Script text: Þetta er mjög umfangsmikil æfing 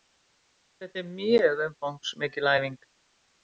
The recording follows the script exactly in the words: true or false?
true